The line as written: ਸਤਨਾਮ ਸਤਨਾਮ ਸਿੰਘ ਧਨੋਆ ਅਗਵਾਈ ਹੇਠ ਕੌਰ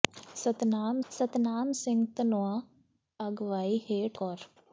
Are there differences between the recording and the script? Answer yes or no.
no